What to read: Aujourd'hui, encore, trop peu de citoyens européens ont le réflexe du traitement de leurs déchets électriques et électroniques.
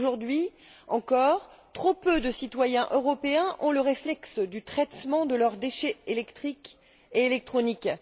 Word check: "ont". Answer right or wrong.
right